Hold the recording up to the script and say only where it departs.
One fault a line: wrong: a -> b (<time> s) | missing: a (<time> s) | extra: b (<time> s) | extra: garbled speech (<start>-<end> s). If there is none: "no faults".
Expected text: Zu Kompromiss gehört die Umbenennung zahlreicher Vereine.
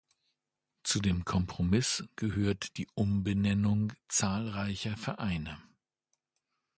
extra: dem (1.0 s)